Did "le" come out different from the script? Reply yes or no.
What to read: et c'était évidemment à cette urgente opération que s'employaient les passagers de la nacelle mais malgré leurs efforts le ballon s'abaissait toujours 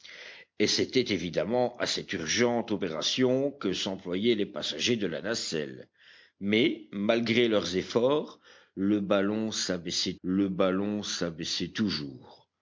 no